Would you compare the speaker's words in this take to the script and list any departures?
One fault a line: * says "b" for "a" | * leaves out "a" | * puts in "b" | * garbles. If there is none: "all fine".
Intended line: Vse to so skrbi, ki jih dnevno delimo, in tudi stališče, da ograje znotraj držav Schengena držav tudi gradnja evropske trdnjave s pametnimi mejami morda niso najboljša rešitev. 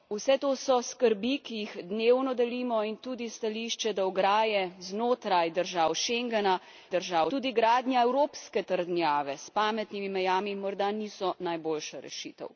all fine